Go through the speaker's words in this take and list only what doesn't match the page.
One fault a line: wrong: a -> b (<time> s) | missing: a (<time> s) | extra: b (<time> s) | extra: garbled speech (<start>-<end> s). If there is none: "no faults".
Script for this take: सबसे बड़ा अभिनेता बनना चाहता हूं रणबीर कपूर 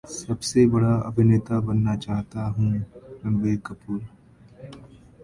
no faults